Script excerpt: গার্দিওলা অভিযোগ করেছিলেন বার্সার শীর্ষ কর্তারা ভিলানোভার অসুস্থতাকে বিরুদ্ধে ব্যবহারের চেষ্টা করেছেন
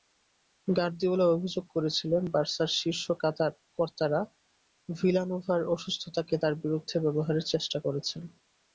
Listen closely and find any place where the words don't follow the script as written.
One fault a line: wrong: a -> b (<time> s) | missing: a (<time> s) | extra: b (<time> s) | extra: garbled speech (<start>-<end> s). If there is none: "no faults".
extra: তাঁর (6.4 s)